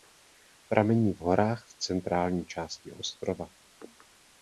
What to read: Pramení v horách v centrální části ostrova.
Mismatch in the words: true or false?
false